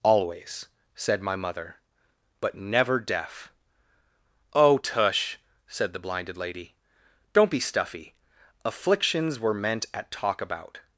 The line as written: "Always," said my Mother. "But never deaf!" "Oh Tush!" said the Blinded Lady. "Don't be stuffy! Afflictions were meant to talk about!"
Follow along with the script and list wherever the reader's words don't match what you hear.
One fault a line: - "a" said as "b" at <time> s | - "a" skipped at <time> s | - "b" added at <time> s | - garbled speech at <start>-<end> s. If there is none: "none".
- "to" said as "at" at 9.9 s